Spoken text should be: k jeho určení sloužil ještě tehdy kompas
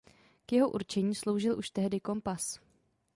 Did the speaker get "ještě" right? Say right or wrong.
wrong